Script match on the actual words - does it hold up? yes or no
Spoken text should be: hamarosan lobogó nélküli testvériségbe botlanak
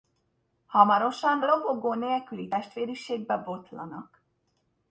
yes